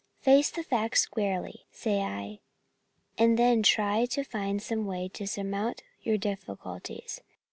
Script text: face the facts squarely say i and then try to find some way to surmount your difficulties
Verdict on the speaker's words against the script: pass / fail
pass